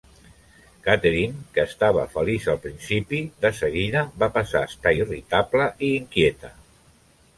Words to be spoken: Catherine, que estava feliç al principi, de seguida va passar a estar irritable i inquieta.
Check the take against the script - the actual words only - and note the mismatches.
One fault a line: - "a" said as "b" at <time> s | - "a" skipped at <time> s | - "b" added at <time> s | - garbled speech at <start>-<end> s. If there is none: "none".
none